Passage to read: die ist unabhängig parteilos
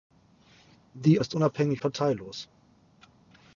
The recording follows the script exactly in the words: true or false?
true